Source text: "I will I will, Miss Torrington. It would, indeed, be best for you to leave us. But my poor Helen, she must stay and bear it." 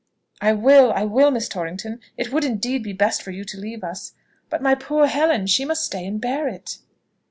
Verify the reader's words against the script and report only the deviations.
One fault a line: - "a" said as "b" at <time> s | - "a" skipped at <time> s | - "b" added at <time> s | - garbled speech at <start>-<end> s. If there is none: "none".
none